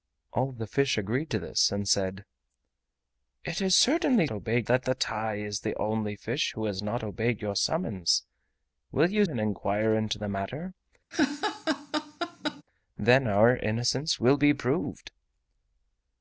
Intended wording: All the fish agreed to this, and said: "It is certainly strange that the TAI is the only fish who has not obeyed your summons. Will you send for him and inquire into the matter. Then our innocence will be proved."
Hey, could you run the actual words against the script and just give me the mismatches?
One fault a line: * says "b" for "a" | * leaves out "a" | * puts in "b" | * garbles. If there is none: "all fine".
* says "obeyed" for "strange"
* leaves out "send for him"